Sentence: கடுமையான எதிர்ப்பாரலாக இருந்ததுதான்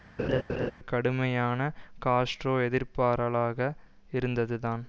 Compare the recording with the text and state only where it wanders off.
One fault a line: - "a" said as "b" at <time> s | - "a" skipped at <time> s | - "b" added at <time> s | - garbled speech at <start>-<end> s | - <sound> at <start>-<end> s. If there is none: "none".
- laugh at 0.2-0.7 s
- "காஸ்ட்ரோ" added at 2.1 s